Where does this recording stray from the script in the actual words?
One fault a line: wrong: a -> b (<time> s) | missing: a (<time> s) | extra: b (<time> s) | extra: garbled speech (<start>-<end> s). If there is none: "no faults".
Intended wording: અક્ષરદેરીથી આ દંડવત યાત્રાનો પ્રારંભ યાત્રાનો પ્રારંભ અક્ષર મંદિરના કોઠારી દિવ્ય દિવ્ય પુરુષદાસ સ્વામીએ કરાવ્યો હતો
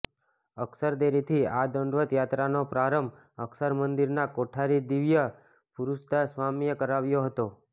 missing: યાત્રાનો પ્રારંભ (3.2 s)
missing: દિવ્ય (5.3 s)